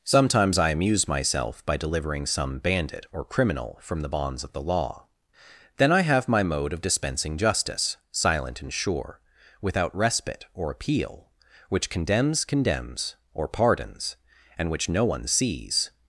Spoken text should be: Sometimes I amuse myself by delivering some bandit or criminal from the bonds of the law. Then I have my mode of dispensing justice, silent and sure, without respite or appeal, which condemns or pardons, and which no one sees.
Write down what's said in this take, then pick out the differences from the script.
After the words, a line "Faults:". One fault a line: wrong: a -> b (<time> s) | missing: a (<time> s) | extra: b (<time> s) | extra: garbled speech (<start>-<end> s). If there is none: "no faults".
Sometimes I amuse myself by delivering some bandit or criminal from the bonds of the law. Then I have my mode of dispensing justice, silent and sure, without respite or appeal, which condemns condemns or pardons, and which no one sees.
Faults:
extra: condemns (12.5 s)